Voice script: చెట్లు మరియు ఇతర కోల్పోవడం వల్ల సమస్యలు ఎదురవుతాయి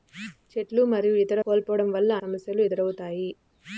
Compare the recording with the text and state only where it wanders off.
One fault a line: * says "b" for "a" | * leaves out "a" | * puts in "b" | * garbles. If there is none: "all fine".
all fine